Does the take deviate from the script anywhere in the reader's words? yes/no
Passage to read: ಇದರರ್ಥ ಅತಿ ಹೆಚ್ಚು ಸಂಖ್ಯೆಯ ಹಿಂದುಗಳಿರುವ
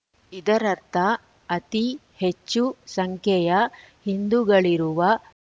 no